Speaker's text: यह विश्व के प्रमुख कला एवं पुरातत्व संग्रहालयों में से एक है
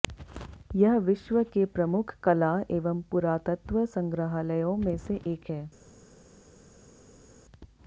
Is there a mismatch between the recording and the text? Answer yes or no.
no